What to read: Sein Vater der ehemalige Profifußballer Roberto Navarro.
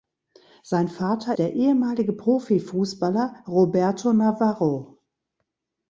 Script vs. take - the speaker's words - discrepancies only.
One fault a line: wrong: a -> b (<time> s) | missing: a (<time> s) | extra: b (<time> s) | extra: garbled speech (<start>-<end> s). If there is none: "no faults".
no faults